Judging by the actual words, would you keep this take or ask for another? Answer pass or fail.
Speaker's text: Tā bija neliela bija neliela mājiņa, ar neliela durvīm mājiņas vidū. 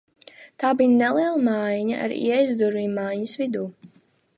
fail